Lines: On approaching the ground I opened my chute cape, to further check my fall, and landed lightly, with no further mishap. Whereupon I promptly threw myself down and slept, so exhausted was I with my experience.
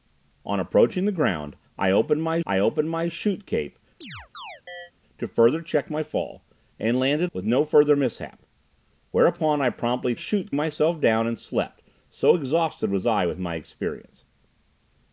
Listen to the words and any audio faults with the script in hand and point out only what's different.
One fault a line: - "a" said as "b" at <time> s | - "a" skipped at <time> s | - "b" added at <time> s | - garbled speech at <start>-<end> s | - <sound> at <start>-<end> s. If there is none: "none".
- "I opened my" added at 2.4 s
- chirp at 4.0-4.9 s
- "lightly" skipped at 7.3 s
- "threw" said as "chute" at 10.1 s